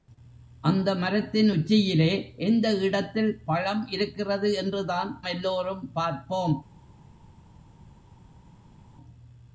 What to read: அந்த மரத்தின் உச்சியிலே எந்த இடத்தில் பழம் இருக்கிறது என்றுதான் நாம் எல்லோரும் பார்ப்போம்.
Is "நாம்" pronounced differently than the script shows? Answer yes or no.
yes